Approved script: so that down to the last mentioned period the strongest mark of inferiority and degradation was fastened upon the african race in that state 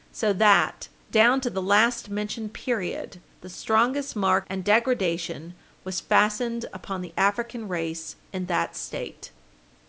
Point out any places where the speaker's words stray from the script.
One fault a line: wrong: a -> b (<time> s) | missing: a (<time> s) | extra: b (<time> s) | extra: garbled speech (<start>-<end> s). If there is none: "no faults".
missing: of inferiority (4.5 s)